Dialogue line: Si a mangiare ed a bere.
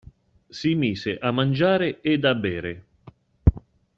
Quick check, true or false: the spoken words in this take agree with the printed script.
false